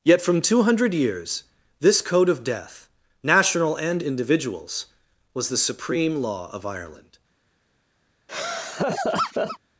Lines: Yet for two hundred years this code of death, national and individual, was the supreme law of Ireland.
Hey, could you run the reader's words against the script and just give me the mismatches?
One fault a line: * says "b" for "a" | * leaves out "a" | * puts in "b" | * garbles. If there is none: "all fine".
* says "from" for "for"
* says "individuals" for "individual"